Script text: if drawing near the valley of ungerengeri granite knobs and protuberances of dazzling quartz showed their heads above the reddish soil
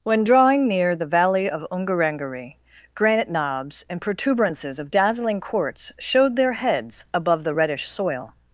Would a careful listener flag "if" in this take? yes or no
yes